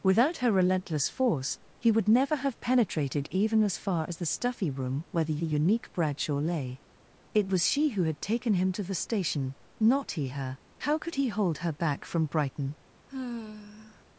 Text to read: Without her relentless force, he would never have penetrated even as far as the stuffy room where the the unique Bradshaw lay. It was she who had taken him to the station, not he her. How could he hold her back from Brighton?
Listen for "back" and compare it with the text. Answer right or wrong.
right